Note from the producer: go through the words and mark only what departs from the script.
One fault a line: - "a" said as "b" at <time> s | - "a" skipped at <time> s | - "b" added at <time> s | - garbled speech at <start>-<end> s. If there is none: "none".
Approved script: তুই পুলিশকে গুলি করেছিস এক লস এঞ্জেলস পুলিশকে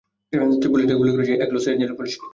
none